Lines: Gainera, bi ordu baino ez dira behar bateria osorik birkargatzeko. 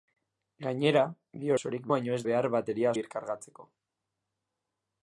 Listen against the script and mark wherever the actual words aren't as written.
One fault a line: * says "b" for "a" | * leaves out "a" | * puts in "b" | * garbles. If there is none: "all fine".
* says "osorik" for "ordu"
* leaves out "dira"
* leaves out "osorik"